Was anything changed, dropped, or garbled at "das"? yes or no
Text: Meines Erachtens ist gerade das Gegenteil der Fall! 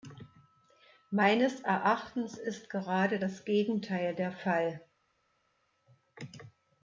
no